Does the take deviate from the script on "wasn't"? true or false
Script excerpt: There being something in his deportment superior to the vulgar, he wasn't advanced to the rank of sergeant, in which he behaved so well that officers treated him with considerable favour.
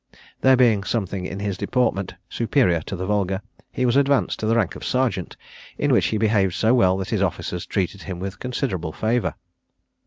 true